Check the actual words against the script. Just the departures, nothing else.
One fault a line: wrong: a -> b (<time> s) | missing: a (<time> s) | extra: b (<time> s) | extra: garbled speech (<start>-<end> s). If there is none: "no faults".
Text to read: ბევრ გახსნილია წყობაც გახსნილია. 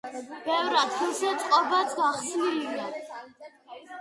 wrong: გახსნილია -> ადგილზე (0.8 s)